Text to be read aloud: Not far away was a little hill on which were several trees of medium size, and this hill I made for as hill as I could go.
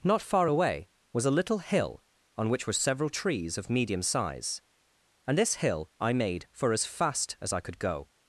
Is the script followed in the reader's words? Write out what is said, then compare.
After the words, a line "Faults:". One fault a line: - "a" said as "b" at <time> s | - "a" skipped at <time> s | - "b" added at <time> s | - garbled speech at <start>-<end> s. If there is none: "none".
Not far away was a little hill on which were several trees of medium size, and this hill I made for as fast as I could go.
Faults:
- "hill" said as "fast" at 6.9 s